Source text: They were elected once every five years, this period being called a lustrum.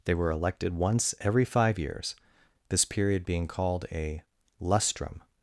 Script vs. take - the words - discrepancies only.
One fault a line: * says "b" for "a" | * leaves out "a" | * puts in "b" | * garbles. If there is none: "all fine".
all fine